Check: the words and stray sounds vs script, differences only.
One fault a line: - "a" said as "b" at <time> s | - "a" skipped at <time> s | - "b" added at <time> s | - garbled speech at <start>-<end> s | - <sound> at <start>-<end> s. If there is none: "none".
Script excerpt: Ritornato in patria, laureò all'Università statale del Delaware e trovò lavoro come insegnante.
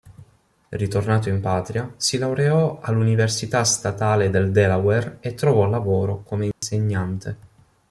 - "si" added at 2.0 s
- dropout at 6.5-6.6 s